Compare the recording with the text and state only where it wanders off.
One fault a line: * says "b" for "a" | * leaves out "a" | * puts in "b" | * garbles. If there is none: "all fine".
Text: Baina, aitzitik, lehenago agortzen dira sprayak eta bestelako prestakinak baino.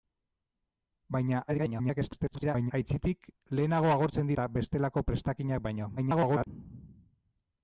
* garbles
* leaves out "dira sprayak"
* garbles